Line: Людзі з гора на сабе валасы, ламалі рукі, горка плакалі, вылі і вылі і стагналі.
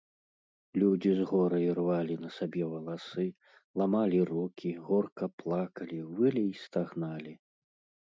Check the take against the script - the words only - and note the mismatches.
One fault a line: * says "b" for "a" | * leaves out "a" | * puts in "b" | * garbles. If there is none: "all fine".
* puts in "ірвалі"
* leaves out "вылі і"